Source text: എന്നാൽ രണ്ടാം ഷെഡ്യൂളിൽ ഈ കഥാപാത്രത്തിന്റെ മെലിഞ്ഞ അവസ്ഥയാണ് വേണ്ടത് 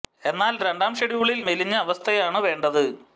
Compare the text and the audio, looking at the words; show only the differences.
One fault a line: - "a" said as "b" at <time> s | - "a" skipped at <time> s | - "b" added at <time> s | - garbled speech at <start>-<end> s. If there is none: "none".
- "ഈ കഥാപാത്രത്തിന്റെ" skipped at 1.4 s